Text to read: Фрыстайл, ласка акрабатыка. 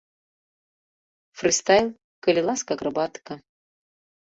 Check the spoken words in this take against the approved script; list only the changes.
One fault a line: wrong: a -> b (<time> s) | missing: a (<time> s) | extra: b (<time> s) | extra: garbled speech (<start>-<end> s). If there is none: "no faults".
extra: калі (2.3 s)